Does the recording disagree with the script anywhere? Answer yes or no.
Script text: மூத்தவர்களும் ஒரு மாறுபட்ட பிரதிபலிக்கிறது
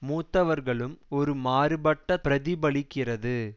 no